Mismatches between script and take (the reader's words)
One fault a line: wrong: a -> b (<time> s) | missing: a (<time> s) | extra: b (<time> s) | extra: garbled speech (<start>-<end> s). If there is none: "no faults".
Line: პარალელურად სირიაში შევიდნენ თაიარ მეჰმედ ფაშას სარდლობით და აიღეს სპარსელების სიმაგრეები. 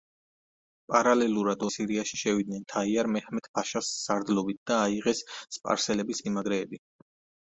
no faults